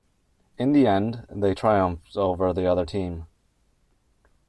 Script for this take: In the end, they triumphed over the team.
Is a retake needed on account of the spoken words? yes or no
yes